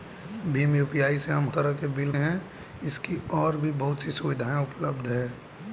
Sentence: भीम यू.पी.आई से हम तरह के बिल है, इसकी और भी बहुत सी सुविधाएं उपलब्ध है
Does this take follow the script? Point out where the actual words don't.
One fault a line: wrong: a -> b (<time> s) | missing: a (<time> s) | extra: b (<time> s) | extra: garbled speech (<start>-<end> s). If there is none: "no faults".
no faults